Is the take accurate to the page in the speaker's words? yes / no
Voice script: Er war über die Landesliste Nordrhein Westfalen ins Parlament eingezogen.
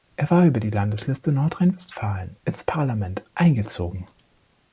yes